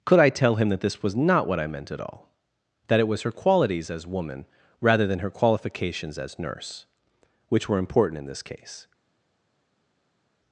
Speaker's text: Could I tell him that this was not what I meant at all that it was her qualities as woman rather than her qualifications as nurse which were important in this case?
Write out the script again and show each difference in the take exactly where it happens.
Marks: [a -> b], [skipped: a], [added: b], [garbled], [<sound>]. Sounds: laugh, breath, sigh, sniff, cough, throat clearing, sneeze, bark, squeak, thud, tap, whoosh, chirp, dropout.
Could I tell him that this was not what I meant at all that it was her qualities as woman rather than her qualifications as nurse which were important in this case?